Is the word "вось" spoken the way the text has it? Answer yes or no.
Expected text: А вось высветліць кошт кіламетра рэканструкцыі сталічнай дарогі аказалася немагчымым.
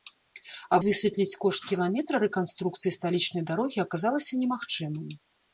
no